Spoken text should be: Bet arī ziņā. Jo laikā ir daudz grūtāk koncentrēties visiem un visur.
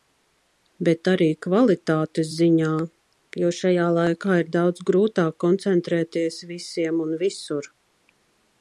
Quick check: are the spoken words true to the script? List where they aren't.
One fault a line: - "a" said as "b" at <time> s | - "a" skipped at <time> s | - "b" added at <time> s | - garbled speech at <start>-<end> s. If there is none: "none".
- "kvalitātes" added at 1.4 s
- "šajā" added at 3.6 s